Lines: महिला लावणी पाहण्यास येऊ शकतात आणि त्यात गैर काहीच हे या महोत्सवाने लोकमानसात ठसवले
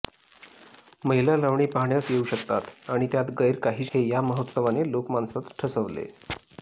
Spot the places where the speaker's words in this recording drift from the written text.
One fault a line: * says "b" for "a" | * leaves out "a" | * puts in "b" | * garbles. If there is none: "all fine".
all fine